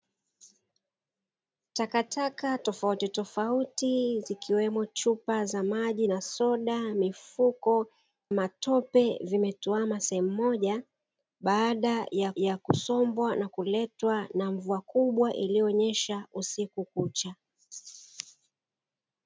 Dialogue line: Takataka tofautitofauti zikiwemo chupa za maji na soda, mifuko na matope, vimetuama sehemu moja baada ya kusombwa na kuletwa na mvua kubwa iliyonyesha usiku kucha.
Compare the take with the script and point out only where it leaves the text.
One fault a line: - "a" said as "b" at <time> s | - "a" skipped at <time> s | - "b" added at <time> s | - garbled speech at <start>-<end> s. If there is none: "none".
- "na" skipped at 7.9 s
- "ya" added at 12.4 s